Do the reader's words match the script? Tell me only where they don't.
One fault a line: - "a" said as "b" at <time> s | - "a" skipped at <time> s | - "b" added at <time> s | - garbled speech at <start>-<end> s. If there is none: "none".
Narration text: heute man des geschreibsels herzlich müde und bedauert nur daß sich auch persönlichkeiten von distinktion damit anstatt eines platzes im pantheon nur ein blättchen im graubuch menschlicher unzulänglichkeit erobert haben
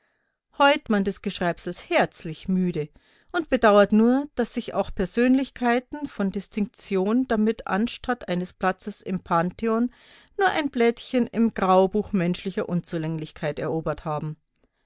none